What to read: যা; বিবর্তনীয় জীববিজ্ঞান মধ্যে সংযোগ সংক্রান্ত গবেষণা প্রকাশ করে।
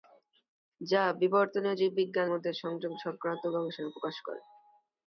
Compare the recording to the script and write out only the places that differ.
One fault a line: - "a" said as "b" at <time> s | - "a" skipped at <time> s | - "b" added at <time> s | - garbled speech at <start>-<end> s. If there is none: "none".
none